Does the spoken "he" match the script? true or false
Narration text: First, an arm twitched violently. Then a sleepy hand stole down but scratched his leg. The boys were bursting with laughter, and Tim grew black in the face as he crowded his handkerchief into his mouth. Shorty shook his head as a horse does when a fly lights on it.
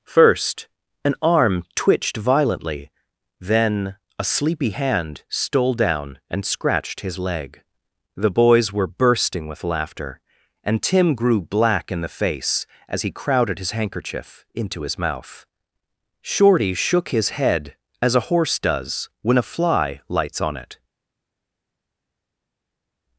true